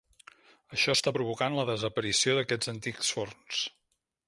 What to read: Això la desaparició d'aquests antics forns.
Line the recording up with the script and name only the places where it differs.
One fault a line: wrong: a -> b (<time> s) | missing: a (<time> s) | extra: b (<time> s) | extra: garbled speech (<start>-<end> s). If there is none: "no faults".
extra: està provocant (1.0 s)